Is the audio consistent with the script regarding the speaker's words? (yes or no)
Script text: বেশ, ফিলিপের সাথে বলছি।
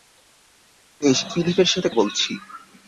yes